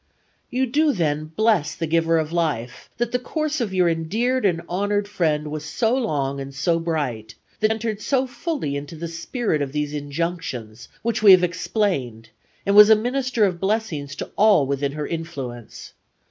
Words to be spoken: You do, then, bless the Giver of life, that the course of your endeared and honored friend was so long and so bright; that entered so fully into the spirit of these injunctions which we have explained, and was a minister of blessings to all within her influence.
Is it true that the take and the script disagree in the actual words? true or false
false